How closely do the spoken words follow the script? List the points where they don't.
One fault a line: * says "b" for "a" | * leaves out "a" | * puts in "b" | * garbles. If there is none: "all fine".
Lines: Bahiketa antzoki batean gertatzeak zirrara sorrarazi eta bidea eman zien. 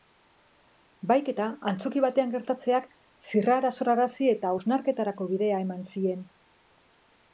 * puts in "hausnarketarako"